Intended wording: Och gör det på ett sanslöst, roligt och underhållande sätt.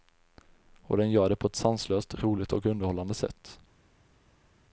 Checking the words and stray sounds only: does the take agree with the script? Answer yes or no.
no